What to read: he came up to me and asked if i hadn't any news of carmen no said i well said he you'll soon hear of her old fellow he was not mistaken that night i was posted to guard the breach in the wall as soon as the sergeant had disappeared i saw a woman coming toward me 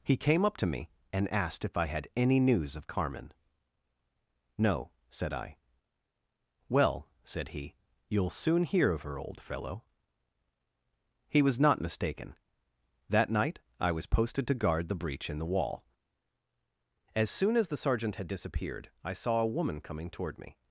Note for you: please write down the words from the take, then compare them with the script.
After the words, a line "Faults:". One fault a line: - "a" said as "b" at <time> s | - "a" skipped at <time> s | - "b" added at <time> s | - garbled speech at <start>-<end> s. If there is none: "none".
he came up to me and asked if i had any news of carmen no said i well said he you'll soon hear of her old fellow he was not mistaken that night i was posted to guard the breach in the wall as soon as the sergeant had disappeared i saw a woman coming toward me
Faults:
- "hadn't" said as "had" at 1.9 s